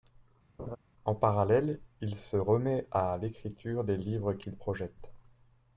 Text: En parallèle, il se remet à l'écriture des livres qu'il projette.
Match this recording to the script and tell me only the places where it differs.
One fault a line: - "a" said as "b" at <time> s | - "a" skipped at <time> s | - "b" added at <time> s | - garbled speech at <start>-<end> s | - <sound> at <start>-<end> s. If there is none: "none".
- laugh at 0.6-0.8 s